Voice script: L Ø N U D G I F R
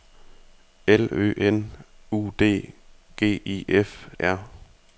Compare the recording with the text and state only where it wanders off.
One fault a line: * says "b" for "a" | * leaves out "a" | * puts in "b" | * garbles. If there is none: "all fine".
all fine